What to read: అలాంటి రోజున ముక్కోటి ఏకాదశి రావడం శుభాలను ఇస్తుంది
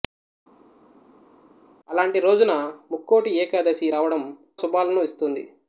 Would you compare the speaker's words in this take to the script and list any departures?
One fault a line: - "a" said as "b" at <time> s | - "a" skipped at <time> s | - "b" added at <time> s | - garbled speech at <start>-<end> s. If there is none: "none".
none